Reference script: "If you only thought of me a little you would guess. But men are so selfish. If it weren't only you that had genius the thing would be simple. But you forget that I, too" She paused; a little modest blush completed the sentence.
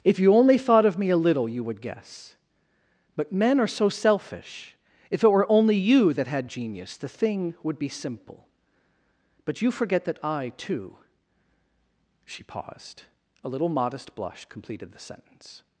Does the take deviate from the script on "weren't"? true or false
true